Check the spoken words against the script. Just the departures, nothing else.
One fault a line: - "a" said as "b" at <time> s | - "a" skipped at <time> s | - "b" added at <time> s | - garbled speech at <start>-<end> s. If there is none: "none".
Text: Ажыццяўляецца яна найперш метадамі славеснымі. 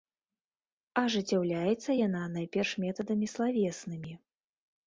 none